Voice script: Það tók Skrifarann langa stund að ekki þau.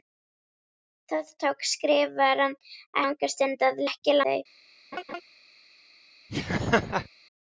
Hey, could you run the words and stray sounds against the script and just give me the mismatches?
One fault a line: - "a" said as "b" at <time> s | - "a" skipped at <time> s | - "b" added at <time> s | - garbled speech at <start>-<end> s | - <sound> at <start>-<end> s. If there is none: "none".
- laugh at 4.9-5.2 s
- laugh at 6.3-7.1 s